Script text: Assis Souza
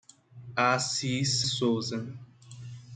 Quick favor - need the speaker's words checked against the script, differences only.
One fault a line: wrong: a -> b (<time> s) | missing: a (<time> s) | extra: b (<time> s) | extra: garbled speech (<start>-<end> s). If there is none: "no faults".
no faults